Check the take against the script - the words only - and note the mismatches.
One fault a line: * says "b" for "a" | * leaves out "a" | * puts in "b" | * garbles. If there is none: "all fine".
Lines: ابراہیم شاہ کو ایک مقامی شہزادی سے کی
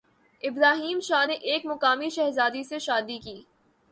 * says "نے" for "کو"
* puts in "شادی"